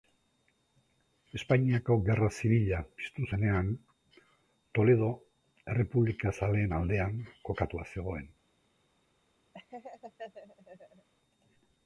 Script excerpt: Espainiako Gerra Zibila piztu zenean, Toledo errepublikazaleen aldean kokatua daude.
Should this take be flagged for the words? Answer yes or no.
yes